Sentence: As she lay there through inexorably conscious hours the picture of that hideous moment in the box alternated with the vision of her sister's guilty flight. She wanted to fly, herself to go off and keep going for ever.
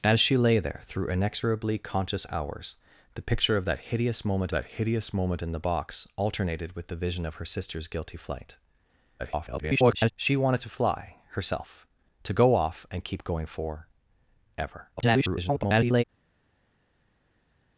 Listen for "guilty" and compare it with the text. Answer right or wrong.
right